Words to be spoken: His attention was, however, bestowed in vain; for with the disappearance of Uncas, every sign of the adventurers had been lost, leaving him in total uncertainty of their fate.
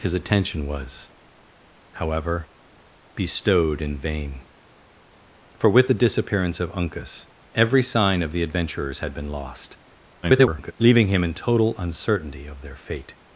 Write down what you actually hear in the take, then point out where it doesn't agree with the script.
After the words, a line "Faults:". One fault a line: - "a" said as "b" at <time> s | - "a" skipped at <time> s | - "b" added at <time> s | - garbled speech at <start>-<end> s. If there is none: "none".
His attention was, however, bestowed in vain; for with the disappearance of Uncas, every sign of the adventurers had been lost, [garbled] leaving him in total uncertainty of their fate.
Faults:
- garbled speech at 10.2-10.7 s